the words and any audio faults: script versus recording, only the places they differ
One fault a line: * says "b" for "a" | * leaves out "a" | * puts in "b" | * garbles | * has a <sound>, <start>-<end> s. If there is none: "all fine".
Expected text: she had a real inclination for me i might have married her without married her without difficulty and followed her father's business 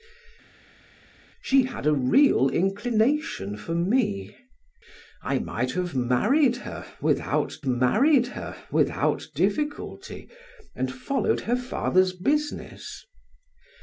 all fine